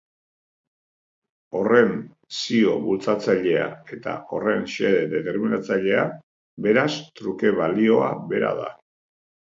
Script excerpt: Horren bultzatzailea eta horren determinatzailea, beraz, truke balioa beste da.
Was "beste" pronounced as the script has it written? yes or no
no